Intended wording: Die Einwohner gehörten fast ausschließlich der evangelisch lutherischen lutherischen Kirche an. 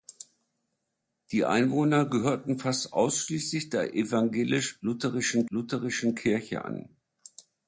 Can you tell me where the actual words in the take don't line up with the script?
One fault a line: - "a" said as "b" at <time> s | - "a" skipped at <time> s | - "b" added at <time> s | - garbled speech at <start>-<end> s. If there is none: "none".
none